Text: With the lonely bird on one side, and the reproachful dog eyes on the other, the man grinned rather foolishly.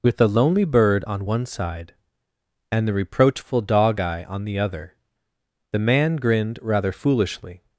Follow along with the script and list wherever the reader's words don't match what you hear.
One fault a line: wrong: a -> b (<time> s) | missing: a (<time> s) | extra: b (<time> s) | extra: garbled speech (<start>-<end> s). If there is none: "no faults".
wrong: eyes -> eye (4.0 s)